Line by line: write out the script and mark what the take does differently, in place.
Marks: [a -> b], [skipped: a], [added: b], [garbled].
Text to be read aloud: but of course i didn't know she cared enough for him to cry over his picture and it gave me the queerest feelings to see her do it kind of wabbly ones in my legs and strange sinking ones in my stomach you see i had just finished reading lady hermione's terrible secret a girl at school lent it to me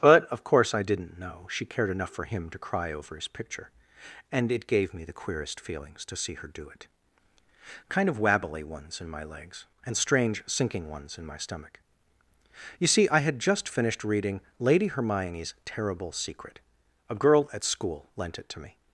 but of course i didn't know she cared enough for him to cry over his picture and it gave me the queerest feelings to see her do it kind of wabbly ones in my legs and strange sinking ones in my stomach you see i had just finished reading lady hermione's terrible secret a girl at school lent it to me